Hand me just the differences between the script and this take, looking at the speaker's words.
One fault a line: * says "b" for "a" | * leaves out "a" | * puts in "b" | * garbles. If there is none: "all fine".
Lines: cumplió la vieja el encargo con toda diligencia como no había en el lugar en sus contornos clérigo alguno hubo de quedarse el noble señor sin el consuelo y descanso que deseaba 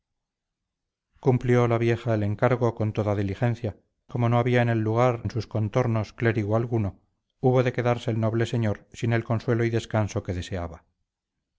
all fine